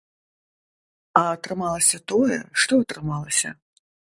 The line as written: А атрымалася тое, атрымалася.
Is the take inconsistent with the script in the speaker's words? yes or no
yes